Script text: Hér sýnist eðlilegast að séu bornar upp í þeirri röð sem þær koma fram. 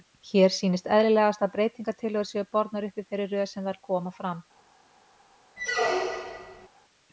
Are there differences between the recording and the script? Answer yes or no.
yes